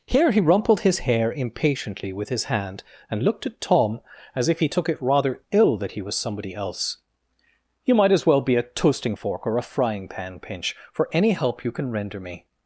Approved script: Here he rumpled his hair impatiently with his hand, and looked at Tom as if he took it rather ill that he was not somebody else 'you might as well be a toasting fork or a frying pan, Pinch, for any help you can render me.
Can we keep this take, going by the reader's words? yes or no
no